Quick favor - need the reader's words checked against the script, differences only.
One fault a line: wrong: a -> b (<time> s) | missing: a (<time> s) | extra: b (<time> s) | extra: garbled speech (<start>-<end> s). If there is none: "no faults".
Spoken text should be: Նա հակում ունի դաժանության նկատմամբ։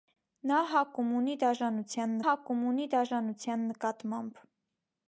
extra: հակում ունի դաժանության (2.2 s)